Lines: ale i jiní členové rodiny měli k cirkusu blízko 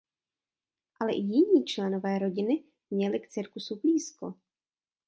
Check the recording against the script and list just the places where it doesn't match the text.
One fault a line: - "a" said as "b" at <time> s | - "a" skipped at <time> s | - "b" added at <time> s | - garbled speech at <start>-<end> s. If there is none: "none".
none